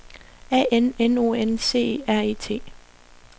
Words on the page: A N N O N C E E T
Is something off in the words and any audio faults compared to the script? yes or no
yes